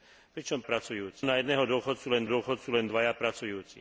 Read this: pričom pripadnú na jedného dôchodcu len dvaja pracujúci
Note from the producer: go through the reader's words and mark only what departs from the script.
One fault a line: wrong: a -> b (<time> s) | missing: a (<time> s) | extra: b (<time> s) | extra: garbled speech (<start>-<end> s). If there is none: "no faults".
wrong: pripadnú -> pracujúci (0.6 s)
extra: dôchodcu len (2.2 s)